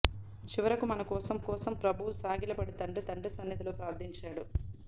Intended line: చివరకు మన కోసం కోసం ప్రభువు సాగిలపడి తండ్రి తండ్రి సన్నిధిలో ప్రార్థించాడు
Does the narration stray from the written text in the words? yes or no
no